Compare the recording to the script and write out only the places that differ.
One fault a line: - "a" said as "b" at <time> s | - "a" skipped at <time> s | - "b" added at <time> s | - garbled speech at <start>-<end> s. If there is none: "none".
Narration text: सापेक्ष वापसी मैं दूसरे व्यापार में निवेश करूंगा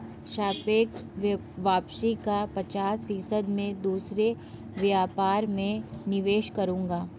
- "का पचास फीसद" added at 2.2 s